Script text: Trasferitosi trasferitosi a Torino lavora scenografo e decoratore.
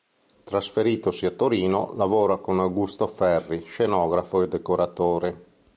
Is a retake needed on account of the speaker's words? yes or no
yes